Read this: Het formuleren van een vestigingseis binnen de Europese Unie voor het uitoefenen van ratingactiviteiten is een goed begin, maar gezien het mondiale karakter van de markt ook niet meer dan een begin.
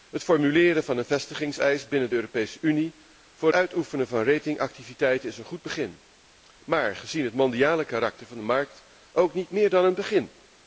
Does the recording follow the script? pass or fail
fail